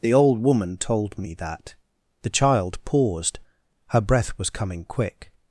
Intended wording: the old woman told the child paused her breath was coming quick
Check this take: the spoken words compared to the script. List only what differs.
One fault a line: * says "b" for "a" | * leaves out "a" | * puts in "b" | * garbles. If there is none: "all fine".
* puts in "me that"